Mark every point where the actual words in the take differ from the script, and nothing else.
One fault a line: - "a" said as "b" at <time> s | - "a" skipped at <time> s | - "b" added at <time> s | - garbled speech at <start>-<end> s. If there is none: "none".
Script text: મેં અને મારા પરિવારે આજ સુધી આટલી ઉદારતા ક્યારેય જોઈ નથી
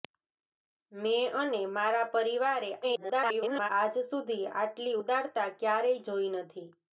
- garbled speech at 2.8-3.7 s